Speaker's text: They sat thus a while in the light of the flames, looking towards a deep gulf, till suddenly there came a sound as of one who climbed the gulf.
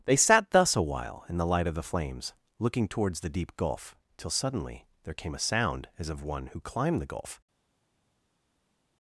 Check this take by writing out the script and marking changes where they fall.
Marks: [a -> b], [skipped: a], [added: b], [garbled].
They sat thus a while in the light of the flames, looking towards [a -> the] deep gulf, till suddenly there came a sound as of one who climbed the gulf.